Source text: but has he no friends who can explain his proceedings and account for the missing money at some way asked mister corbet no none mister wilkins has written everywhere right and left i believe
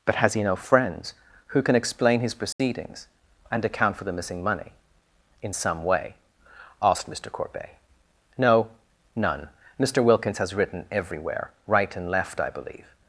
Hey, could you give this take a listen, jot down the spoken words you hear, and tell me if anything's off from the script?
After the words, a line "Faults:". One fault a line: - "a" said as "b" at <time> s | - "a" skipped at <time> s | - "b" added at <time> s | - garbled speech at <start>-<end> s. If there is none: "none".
but has he no friends who can explain his proceedings and account for the missing money in some way asked mister corbet no none mister wilkins has written everywhere right and left i believe
Faults:
- "at" said as "in" at 5.4 s